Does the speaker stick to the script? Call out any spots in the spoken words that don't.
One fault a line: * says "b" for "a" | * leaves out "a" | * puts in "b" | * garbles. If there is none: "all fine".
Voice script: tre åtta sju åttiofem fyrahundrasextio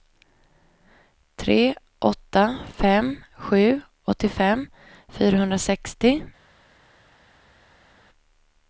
* puts in "fem"